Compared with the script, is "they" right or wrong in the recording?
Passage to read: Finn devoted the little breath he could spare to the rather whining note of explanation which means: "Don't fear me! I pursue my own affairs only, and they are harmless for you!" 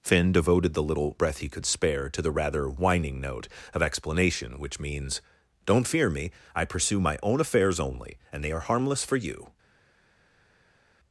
right